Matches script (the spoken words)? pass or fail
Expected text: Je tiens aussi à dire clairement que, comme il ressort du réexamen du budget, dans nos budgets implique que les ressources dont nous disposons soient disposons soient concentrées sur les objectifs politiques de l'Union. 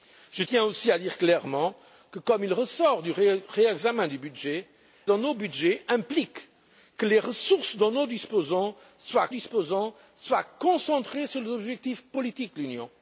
pass